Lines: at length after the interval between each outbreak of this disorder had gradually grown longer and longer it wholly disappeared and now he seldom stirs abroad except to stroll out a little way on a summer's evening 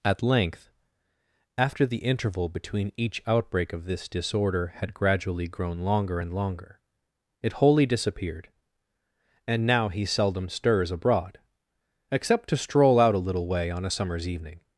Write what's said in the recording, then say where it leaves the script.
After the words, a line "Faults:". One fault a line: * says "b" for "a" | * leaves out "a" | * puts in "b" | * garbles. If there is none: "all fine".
at length after the interval between each outbreak of this disorder had gradually grown longer and longer it wholly disappeared and now he seldom stirs abroad except to stroll out a little way on a summer's evening
Faults:
all fine